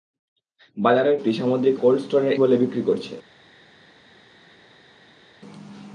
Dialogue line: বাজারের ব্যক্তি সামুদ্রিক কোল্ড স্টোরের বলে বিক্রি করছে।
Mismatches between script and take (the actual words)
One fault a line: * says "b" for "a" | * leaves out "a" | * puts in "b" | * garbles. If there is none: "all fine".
all fine